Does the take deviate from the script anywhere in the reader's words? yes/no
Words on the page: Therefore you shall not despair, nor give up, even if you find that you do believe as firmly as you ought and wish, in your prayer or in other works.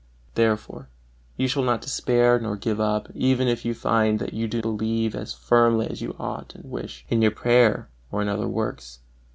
no